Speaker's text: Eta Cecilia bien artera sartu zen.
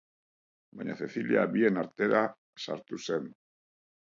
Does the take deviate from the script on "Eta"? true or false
true